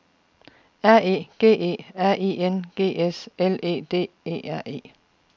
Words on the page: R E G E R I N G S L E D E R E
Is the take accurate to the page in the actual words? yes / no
yes